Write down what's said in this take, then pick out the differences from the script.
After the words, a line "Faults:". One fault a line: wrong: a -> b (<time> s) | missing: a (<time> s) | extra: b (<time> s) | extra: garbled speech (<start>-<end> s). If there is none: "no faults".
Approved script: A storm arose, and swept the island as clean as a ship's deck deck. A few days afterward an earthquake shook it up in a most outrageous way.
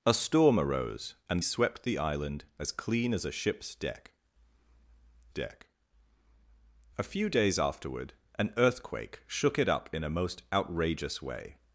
A storm arose, and swept the island as clean as a ship's deck deck. A few days afterward an earthquake shook it up in a most outrageous way.
Faults:
no faults